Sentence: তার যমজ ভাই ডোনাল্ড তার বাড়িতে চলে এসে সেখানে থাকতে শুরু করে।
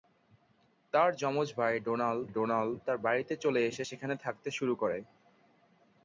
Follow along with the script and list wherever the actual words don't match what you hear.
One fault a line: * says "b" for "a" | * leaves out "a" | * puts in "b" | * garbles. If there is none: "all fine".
* puts in "ডোনাল্ড"